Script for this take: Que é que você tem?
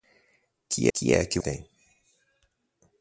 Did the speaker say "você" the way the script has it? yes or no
no